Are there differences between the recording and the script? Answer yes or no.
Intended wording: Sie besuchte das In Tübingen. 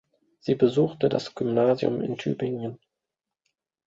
yes